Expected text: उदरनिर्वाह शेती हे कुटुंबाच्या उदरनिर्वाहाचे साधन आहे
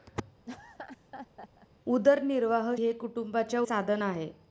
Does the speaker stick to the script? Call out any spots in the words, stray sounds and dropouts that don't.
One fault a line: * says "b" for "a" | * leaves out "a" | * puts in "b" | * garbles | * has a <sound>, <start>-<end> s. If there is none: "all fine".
* has a laugh, 0.5-1.7 s
* leaves out "शेती"
* leaves out "उदरनिर्वाहाचे"